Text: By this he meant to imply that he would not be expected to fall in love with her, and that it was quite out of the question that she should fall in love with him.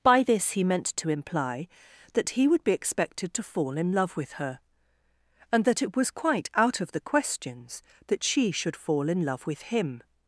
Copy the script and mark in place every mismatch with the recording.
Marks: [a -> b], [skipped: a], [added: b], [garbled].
By this he meant to imply that he would [skipped: not] be expected to fall in love with her, and that it was quite out of the [question -> questions] that she should fall in love with him.